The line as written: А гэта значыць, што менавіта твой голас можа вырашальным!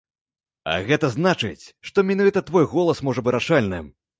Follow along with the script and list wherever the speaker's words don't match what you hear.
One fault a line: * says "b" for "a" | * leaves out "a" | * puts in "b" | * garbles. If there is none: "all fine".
all fine